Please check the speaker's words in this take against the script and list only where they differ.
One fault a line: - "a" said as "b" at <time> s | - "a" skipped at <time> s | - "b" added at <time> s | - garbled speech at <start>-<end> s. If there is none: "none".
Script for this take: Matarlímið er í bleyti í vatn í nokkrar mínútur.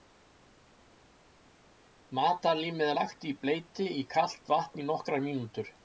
- "lagt" added at 3.0 s
- "kalt" added at 4.2 s